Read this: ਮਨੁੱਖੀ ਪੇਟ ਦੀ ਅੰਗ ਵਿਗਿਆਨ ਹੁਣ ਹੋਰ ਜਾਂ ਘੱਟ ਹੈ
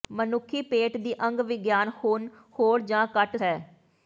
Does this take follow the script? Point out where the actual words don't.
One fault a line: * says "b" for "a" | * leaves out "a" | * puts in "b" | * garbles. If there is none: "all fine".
all fine